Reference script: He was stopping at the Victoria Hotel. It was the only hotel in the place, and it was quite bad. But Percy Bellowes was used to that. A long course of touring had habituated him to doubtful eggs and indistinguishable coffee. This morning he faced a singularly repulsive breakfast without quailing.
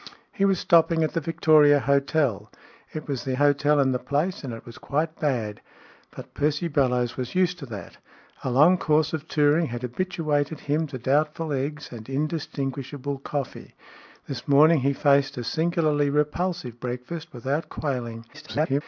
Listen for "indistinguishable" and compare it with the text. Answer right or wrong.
right